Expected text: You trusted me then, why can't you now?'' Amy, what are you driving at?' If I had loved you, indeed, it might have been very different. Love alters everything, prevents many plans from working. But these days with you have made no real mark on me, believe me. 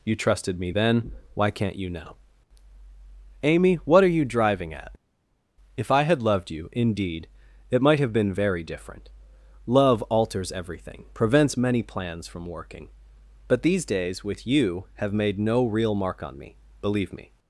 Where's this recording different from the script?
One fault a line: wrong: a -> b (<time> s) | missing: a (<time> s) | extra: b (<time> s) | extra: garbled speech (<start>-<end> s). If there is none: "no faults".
no faults